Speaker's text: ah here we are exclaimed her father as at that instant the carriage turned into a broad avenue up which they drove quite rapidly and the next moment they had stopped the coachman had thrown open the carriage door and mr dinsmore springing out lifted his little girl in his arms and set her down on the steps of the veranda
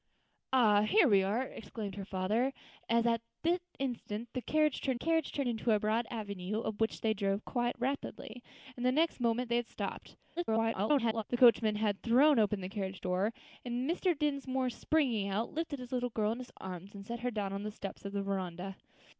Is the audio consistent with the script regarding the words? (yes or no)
no